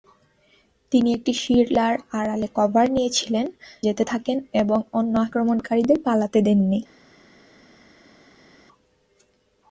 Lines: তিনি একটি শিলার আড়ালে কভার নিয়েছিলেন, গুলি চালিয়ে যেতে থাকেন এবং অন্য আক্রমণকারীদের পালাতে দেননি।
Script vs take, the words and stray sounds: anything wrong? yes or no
yes